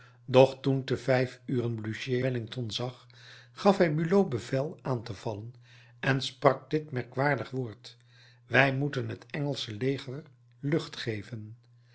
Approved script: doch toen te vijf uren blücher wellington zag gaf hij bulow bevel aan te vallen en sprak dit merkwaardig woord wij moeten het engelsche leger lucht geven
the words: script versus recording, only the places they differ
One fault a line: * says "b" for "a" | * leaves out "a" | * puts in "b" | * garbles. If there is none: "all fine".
all fine